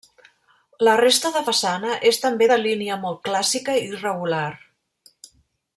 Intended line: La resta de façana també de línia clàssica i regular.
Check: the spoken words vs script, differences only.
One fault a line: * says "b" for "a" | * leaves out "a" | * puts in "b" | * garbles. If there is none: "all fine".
* puts in "és"
* puts in "molt"